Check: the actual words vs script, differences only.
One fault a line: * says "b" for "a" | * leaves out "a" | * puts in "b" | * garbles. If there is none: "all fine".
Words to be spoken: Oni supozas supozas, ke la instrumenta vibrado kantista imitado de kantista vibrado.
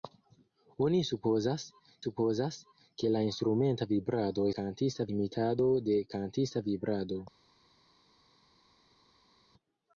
all fine